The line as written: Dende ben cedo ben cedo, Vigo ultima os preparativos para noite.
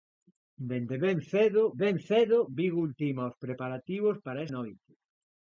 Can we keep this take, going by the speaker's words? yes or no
yes